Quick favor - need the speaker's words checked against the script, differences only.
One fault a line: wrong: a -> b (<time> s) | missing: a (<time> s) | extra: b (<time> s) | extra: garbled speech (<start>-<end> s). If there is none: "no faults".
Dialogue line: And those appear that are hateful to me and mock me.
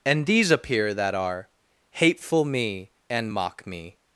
wrong: those -> these (0.2 s)
missing: to (2.4 s)